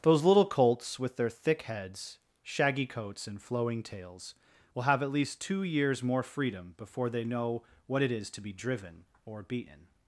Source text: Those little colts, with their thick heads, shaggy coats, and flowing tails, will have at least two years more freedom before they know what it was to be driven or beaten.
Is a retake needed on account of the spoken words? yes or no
yes